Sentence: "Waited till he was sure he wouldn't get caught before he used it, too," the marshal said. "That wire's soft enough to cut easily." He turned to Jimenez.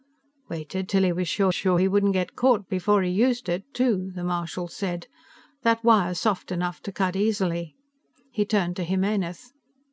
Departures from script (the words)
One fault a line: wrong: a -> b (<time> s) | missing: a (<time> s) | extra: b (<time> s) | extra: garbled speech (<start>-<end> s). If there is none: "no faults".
extra: sure (1.5 s)